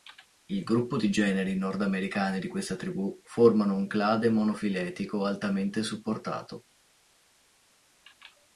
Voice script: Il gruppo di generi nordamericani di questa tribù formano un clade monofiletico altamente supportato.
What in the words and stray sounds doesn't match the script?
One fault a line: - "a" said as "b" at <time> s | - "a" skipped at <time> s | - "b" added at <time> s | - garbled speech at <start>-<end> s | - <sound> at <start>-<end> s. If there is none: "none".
none